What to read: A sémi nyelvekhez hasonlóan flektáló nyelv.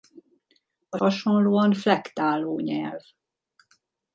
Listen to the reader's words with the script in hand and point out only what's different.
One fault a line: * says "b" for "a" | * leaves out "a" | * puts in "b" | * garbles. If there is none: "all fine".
* leaves out "sémi nyelvekhez"